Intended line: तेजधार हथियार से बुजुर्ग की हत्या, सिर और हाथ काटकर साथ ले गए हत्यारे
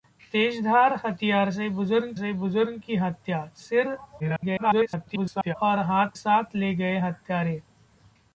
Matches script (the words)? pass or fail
fail